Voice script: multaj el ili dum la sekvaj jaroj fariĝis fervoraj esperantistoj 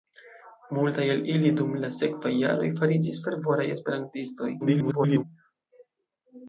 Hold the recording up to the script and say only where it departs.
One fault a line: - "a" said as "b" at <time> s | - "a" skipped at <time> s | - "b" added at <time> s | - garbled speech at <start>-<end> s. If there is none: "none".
- garbled speech at 4.6-5.2 s